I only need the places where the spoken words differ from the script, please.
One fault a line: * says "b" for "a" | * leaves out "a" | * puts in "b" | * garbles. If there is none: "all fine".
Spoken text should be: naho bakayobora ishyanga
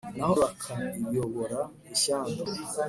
all fine